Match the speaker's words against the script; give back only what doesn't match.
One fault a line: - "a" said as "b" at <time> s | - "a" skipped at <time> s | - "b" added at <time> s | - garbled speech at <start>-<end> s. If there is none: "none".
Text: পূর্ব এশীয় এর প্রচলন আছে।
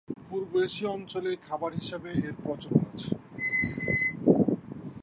- "অঞ্চলে খাবার হিসেবে" added at 1.0 s